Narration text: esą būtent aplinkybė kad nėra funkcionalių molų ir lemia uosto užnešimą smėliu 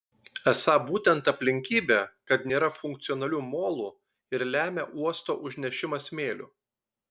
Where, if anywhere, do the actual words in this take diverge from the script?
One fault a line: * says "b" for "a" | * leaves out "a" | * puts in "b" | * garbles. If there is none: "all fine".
all fine